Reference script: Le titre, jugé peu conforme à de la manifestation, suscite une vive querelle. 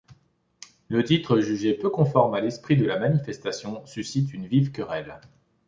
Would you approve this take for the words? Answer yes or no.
no